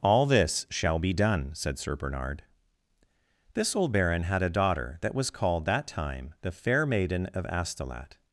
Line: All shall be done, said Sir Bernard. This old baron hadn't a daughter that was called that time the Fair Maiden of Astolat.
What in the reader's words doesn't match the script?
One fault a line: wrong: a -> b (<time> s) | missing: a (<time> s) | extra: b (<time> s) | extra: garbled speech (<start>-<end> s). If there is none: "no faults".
extra: this (0.2 s)
wrong: hadn't -> had (4.2 s)